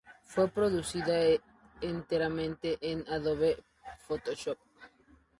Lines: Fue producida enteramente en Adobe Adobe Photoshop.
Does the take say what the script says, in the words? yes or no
no